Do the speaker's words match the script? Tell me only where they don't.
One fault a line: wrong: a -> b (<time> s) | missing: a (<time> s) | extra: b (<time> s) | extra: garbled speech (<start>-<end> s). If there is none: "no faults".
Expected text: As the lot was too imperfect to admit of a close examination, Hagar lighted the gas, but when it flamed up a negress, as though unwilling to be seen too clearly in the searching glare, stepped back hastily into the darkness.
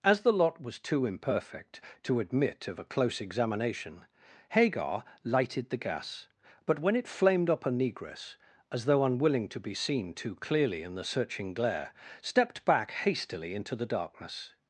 no faults